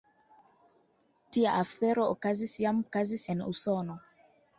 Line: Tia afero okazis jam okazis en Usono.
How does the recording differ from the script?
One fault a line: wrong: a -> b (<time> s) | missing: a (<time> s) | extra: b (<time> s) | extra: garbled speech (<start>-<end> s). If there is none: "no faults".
no faults